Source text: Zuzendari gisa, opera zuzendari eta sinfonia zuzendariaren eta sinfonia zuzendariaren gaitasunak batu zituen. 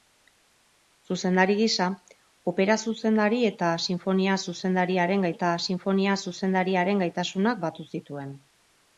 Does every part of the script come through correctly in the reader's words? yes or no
yes